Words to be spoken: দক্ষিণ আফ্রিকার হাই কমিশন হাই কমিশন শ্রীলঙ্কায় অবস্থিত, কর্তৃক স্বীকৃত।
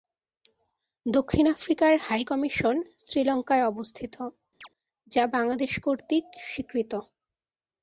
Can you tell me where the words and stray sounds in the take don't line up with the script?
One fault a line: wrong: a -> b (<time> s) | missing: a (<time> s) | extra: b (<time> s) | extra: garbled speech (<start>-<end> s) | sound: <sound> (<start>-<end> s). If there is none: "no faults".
wrong: হাই কমিশন শ্রীলঙ্কায় অবস্থিত -> শ্রীলঙ্কায় অবস্থিত যা বাংলাদেশ (3.0 s)
sound: chirp (4.6-4.7 s)